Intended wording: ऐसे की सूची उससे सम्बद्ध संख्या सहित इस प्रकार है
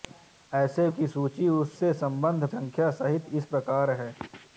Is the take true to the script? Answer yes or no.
yes